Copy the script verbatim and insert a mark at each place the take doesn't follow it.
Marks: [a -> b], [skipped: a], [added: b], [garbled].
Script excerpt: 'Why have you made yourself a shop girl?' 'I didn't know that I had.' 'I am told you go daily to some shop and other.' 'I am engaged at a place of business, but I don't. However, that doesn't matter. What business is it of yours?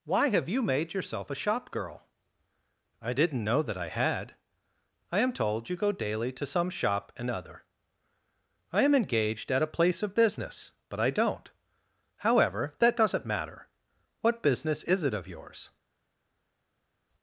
'Why have you made yourself a shop girl?' 'I didn't know that I had.' 'I am told you go daily to some shop and other.' 'I am engaged at a place of business, but I don't. However, that doesn't matter. What business is it of yours?